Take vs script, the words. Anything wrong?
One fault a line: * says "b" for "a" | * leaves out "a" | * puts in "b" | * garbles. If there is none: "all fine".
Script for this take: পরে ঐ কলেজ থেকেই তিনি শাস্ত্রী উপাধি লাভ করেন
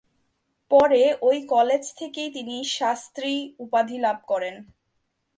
all fine